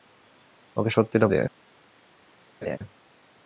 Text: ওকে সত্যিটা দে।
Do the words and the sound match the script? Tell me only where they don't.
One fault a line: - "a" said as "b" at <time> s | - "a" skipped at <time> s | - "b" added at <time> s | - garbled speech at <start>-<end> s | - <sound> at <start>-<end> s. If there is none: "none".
- laugh at 2.6-2.8 s